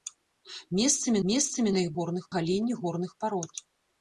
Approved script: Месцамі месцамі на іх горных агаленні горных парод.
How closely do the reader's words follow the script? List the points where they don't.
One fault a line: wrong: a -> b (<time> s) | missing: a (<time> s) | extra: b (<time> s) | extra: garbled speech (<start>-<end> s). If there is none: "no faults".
no faults